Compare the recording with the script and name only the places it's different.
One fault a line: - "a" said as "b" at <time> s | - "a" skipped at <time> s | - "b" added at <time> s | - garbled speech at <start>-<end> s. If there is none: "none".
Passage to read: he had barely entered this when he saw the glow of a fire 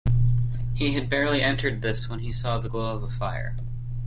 none